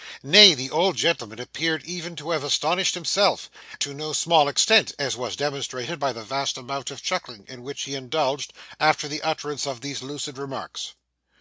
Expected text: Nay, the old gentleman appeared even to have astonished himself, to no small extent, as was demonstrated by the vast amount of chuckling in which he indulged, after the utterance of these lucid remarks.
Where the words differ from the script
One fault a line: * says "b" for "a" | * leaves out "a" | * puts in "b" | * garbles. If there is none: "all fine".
all fine